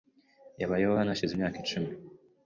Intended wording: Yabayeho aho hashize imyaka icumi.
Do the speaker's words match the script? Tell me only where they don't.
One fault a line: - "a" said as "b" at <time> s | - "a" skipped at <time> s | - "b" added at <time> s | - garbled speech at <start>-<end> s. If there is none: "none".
- "aho" said as "hano" at 1.0 s